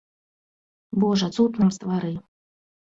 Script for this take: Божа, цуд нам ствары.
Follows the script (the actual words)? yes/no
yes